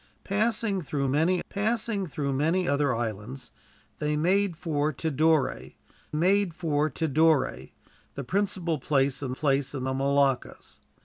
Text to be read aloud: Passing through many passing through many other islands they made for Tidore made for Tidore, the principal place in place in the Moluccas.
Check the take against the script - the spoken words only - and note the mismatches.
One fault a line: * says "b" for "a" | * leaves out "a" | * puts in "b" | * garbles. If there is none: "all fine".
all fine